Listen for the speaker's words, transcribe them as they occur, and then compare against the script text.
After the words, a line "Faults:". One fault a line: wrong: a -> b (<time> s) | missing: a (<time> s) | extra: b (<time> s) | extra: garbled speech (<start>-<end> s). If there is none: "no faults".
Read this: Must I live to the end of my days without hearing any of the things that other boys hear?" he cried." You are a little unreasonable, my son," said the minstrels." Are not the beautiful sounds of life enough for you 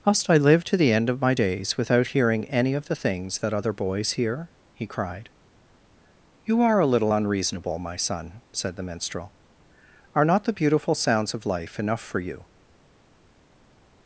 Must I live to the end of my days without hearing any of the things that other boys hear?" he cried." You are a little unreasonable, my son," said the minstrel." Are not the beautiful sounds of life enough for you
Faults:
wrong: minstrels -> minstrel (8.8 s)